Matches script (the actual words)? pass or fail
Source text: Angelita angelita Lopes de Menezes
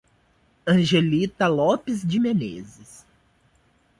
fail